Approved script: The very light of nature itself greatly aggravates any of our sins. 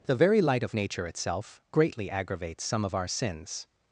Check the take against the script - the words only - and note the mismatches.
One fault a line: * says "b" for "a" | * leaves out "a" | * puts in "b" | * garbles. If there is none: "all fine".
* says "some" for "any"